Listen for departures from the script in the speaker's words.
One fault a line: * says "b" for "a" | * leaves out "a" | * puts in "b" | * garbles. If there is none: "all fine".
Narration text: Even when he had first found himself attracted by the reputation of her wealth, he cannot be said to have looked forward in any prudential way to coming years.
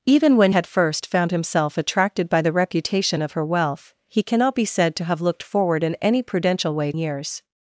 * leaves out "he"
* leaves out "to coming"